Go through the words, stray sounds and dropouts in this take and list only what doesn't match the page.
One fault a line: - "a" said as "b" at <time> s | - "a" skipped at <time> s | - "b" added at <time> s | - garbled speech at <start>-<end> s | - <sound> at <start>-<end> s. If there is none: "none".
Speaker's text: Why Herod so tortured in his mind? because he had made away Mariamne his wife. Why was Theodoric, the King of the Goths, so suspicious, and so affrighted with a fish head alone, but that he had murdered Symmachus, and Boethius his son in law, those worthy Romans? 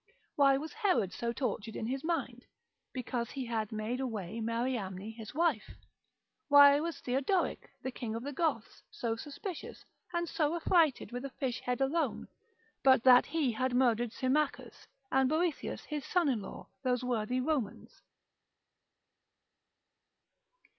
- "was" added at 0.6 s